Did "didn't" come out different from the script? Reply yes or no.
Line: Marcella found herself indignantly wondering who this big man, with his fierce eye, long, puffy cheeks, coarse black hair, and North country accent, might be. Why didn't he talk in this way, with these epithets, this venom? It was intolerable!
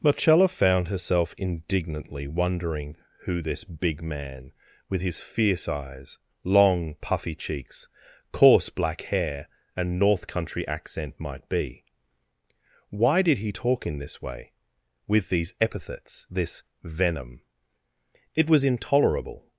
yes